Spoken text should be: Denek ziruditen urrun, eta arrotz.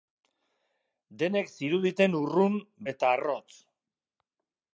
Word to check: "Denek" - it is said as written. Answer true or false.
true